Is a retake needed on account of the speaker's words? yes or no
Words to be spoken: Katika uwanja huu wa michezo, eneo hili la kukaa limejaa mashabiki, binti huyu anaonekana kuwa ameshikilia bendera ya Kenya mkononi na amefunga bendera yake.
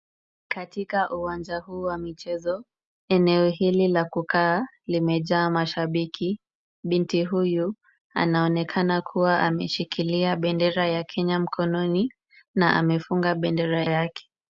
no